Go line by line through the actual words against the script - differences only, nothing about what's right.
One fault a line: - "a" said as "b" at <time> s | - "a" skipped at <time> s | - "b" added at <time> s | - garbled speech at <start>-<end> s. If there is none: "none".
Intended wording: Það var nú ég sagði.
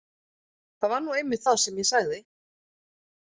- "einmitt það sem" added at 1.2 s